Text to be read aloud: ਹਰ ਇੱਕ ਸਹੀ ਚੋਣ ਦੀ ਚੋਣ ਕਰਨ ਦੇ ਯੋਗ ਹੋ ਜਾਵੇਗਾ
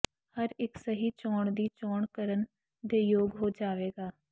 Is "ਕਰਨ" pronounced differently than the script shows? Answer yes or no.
no